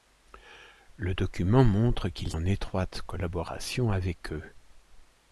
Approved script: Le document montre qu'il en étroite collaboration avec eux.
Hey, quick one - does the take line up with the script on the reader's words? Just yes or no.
yes